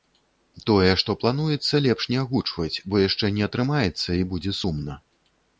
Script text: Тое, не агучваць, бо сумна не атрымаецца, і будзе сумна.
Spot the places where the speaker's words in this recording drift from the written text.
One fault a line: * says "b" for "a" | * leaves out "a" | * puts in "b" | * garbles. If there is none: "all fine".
* puts in "што плануецца лепш"
* says "яшчэ" for "сумна"